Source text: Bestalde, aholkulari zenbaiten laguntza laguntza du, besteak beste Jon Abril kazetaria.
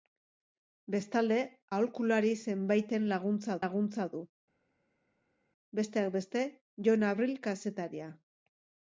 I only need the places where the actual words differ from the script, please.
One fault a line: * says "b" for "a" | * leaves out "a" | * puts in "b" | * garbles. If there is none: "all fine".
all fine